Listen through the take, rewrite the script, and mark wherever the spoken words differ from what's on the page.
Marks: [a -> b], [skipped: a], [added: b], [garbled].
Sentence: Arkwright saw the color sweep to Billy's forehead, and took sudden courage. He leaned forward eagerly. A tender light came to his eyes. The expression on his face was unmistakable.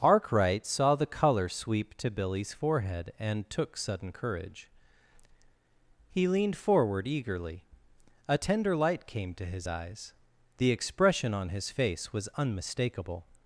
Arkwright saw the color sweep to Billy's forehead, and took sudden courage. He leaned forward eagerly. A tender light came to his eyes. The expression on his face was unmistakable.